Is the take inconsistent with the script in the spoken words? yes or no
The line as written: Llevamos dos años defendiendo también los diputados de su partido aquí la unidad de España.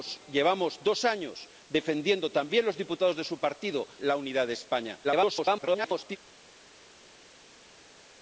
yes